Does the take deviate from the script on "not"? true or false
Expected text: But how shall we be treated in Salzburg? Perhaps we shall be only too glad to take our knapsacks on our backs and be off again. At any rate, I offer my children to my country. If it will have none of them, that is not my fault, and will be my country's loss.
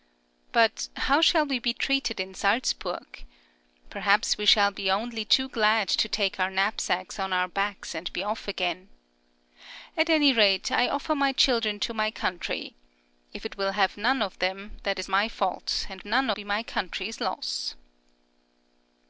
true